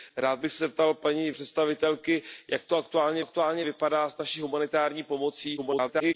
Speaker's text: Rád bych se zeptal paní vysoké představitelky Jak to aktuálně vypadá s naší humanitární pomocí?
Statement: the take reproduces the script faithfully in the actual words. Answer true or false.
false